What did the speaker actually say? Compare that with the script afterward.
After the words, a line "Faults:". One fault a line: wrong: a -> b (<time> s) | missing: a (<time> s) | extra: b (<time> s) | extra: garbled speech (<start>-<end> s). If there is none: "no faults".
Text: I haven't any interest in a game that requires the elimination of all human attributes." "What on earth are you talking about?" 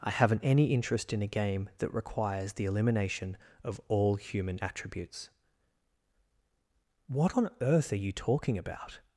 I haven't any interest in a game that requires the elimination of all human attributes." "What on earth are you talking about?"
Faults:
no faults